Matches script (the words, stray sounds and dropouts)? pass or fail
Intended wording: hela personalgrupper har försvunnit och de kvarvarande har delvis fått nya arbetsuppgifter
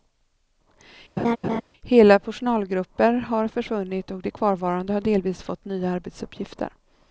fail